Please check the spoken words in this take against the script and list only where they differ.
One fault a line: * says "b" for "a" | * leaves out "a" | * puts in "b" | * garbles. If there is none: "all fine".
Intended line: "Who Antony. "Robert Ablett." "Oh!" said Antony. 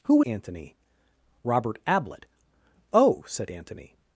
all fine